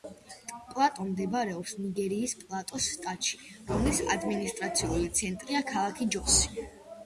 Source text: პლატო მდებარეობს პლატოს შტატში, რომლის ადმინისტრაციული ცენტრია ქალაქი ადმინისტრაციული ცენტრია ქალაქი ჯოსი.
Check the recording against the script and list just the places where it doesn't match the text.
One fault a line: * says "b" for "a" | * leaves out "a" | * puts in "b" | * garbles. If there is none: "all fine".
* puts in "ნიგერიის"
* leaves out "ადმინისტრაციული ცენტრია ქალაქი"